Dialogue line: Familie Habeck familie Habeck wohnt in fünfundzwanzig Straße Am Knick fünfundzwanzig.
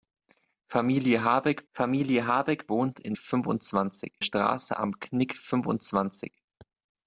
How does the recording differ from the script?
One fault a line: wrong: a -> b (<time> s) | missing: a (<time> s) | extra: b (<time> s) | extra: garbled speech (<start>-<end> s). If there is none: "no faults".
no faults